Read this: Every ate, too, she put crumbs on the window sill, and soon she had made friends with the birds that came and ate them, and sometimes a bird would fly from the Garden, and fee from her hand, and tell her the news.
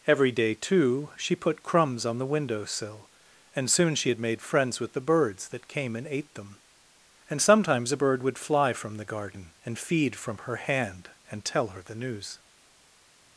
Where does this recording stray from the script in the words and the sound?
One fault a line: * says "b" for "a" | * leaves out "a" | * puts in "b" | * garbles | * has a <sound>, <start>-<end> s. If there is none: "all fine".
* says "day" for "ate"
* says "feed" for "fee"